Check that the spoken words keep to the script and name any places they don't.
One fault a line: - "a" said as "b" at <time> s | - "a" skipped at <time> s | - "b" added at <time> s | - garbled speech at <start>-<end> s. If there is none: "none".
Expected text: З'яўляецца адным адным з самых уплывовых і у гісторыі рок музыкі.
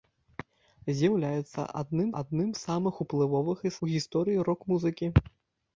none